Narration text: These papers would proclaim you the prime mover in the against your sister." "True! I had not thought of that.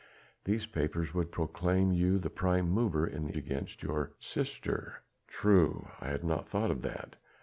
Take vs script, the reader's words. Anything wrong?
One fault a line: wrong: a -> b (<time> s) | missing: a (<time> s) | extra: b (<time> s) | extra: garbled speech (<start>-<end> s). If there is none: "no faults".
no faults